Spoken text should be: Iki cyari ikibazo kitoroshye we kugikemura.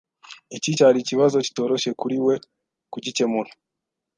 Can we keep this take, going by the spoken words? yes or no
no